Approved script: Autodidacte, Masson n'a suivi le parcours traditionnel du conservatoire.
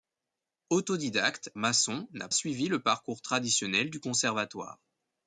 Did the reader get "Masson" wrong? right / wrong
right